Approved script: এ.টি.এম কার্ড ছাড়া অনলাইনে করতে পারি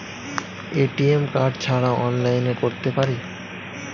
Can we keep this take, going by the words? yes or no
yes